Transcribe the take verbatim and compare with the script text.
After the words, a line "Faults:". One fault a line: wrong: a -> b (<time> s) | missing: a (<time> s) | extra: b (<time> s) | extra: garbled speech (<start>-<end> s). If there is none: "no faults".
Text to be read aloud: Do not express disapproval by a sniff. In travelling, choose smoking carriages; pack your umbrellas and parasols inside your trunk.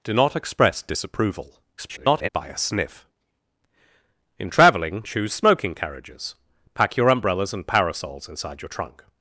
Do not express disapproval [garbled] by a sniff. In travelling, choose smoking carriages; pack your umbrellas and parasols inside your trunk.
Faults:
extra: garbled speech (1.8-2.3 s)